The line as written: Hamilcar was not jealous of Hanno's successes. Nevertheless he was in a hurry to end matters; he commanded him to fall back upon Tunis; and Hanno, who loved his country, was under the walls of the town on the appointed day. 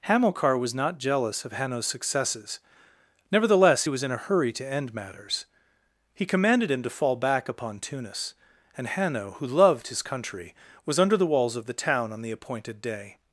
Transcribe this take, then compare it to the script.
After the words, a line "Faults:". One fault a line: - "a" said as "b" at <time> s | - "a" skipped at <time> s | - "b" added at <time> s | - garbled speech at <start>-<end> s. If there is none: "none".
Hamilcar was not jealous of Hanno's successes. Nevertheless he was in a hurry to end matters; he commanded him to fall back upon Tunis; and Hanno, who loved his country, was under the walls of the town on the appointed day.
Faults:
none